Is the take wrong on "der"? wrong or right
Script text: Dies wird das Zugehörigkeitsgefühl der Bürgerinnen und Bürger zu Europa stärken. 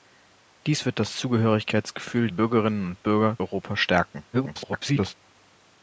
wrong